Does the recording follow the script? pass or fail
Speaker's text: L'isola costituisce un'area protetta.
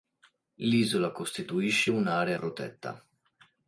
pass